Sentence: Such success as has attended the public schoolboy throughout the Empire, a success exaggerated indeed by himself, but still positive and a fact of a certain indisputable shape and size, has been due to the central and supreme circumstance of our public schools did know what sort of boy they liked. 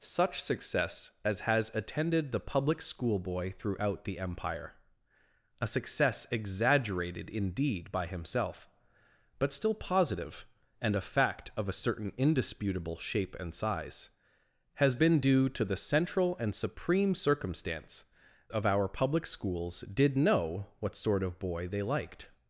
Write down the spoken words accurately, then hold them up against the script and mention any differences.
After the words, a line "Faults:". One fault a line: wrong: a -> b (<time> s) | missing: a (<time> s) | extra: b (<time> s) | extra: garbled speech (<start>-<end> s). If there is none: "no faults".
Such success as has attended the public schoolboy throughout the Empire, a success exaggerated indeed by himself, but still positive and a fact of a certain indisputable shape and size, has been due to the central and supreme circumstance of our public schools did know what sort of boy they liked.
Faults:
no faults